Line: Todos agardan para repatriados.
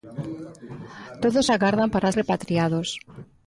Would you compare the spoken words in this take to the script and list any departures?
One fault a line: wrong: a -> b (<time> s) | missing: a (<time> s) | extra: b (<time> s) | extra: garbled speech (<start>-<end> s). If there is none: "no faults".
no faults